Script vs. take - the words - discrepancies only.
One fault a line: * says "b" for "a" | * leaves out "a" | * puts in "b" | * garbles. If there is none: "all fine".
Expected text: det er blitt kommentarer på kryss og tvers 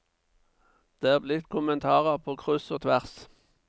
all fine